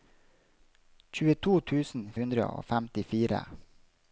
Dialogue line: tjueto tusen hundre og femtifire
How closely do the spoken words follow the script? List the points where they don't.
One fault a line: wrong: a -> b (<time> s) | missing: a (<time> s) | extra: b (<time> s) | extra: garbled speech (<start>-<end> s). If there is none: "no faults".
no faults